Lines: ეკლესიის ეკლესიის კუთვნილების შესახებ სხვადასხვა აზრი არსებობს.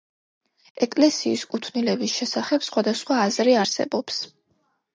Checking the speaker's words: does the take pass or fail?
fail